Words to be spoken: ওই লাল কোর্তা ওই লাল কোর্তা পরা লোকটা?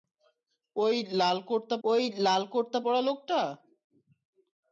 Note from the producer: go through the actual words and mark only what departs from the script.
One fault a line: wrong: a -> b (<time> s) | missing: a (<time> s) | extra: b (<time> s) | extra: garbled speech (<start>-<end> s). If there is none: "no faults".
no faults